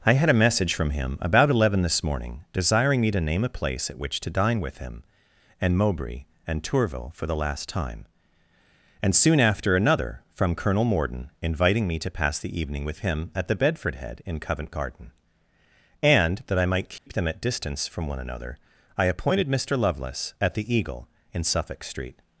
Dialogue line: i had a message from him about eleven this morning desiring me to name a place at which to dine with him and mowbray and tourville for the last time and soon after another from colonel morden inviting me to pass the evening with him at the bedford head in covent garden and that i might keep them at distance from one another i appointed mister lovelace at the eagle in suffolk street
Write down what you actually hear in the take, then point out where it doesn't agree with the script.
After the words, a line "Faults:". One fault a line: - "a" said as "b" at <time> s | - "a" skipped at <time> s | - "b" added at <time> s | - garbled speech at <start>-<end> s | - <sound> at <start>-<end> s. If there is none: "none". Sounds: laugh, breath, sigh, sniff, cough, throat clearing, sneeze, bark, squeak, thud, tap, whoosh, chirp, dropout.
i had a message from him about eleven this morning desiring me to name a place at which to dine with him and mowbray and tourville for the last time and soon after another from colonel morden inviting me to pass the evening with him at the bedford head in covent garden and that i might keep them at distance from one another i appointed mister lovelace at the eagle in suffolk street
Faults:
- dropout at 17.0-17.1 s